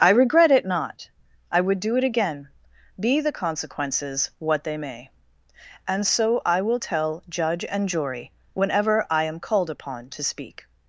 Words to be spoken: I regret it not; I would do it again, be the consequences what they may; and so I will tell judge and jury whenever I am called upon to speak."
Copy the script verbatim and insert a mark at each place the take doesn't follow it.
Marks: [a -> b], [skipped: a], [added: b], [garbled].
I regret it not; I would do it again, be the consequences what they may; and so I will tell judge and jury whenever I am called upon to speak."